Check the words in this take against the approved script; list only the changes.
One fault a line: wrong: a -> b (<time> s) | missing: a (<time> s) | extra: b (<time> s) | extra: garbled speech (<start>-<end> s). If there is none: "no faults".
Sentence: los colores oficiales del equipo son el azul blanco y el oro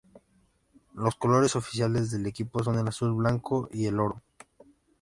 no faults